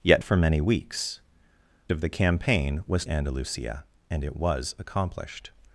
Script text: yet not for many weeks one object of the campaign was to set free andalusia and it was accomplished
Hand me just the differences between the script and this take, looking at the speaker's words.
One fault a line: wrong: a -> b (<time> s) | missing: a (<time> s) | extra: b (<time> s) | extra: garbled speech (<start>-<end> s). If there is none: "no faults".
missing: not (0.2 s)
missing: one object (1.2 s)
missing: to set free (3.0 s)